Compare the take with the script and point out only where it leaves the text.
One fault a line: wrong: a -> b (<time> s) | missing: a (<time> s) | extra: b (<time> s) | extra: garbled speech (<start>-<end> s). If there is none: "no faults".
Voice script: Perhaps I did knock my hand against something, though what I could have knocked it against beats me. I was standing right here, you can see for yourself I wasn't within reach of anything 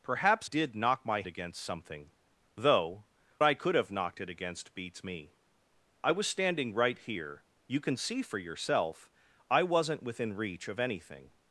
missing: I (0.5 s)
missing: hand (1.2 s)
missing: what (3.1 s)